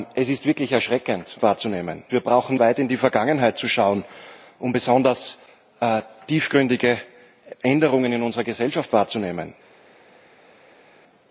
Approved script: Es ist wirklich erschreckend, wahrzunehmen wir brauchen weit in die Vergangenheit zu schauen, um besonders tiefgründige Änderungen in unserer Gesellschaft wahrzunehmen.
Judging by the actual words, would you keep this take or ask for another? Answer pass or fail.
pass